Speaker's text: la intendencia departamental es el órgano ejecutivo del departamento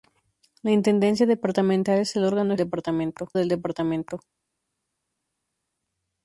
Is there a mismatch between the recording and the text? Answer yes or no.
yes